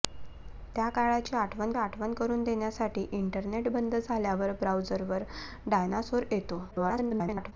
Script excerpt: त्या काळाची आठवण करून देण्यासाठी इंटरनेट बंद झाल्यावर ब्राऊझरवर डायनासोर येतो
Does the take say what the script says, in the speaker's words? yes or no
no